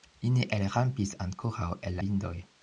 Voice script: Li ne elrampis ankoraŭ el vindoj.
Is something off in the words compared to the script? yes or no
no